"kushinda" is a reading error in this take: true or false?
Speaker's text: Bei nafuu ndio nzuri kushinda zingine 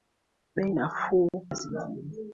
true